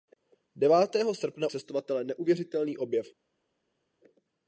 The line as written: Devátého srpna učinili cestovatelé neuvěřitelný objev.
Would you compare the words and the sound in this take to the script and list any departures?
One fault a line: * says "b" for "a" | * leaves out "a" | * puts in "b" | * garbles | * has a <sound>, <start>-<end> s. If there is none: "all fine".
* leaves out "učinili"